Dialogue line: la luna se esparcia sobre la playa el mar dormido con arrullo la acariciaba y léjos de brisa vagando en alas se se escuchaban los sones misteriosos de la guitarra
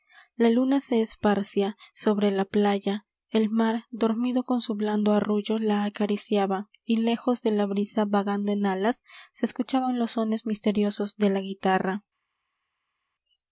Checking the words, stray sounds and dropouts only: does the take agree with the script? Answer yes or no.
no